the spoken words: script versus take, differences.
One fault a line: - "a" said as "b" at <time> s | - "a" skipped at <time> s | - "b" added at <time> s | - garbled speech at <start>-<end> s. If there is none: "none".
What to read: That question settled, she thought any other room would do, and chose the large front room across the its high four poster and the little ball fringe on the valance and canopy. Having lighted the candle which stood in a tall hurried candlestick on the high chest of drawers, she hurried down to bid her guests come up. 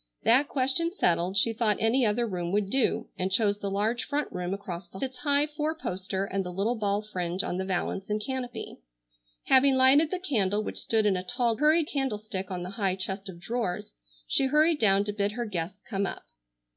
none